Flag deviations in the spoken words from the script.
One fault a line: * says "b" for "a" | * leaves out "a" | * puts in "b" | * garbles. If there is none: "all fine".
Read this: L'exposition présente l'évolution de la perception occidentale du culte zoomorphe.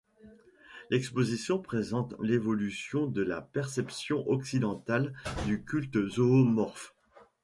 all fine